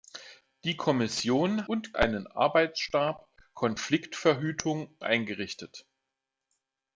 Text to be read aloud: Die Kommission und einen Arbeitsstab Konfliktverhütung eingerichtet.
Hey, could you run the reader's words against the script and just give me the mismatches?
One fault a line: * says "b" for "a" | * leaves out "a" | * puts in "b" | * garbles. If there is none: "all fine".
all fine